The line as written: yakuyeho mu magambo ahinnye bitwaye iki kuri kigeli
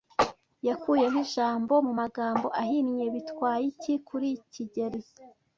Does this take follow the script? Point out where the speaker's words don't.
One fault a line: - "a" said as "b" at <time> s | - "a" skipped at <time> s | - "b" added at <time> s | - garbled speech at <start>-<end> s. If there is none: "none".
- "ijambo" added at 1.2 s